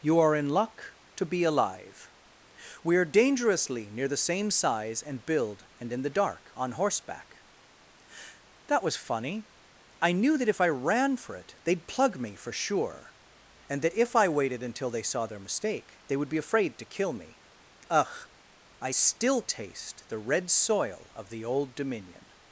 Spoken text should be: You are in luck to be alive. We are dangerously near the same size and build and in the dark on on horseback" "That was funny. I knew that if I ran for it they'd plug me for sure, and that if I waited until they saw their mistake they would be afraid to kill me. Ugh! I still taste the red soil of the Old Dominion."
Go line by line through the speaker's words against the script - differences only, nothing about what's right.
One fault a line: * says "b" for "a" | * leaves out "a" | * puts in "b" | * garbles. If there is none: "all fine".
* leaves out "on"